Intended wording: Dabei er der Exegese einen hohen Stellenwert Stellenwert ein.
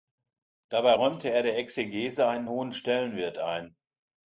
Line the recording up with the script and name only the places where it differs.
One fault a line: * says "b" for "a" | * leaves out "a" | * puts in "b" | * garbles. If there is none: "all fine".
* puts in "räumte"
* leaves out "Stellenwert"